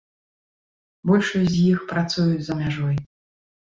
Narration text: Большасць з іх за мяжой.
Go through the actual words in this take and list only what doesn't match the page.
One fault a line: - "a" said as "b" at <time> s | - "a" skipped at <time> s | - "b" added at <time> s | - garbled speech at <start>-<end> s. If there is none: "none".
- "працуюць" added at 1.9 s